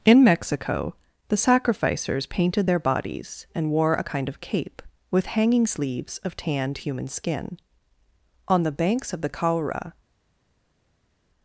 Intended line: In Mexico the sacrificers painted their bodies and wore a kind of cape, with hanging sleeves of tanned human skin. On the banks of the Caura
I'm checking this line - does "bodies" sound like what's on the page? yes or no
yes